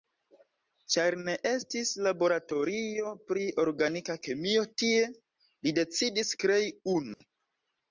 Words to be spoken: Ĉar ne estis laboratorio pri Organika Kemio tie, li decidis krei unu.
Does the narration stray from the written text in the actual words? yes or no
no